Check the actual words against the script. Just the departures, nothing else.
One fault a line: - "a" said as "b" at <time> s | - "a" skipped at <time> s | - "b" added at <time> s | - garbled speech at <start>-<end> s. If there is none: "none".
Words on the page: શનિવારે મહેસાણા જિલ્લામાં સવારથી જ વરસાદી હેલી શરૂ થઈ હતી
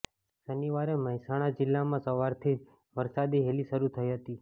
none